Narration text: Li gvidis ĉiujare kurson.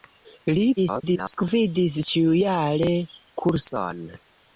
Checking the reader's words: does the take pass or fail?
fail